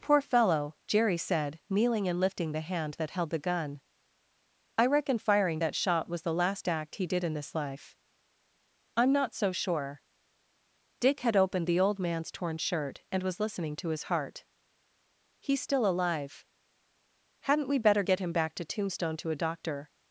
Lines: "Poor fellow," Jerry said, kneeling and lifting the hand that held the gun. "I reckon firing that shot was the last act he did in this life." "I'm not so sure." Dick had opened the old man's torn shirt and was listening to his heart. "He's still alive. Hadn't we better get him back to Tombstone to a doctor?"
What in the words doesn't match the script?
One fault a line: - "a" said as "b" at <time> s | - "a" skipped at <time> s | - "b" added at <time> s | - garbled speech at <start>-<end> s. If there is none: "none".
none